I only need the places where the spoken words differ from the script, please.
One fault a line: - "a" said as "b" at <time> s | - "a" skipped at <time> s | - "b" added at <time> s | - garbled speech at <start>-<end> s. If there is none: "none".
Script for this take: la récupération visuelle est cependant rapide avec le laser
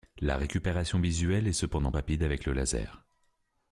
none